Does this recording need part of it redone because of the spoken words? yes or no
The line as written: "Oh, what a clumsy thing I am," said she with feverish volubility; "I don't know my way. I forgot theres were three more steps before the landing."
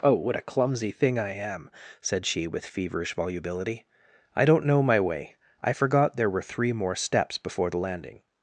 yes